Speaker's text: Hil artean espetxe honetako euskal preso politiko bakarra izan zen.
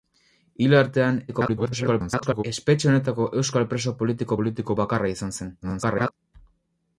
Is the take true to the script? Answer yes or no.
no